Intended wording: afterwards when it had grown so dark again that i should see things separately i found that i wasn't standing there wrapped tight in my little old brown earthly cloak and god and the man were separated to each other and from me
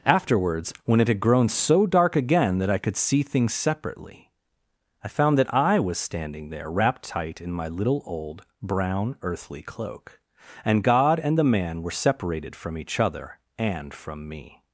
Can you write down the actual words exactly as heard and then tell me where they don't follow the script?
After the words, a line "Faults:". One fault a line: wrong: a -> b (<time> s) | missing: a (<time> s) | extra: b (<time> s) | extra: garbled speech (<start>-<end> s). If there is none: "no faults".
afterwards when it had grown so dark again that i could see things separately i found that i was standing there wrapped tight in my little old brown earthly cloak and god and the man were separated from each other and from me
Faults:
wrong: should -> could (2.8 s)
wrong: wasn't -> was (5.8 s)
wrong: to -> from (12.6 s)